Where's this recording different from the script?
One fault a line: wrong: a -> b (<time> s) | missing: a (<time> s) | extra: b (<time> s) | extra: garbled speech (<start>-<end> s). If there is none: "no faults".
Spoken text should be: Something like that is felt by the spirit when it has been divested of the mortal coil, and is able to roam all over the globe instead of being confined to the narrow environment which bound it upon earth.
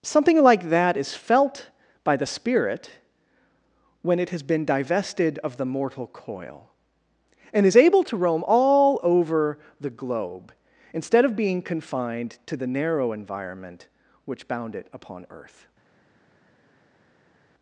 no faults